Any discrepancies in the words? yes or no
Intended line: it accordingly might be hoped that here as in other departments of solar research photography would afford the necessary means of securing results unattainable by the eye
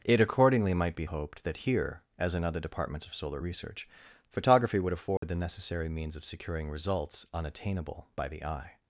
no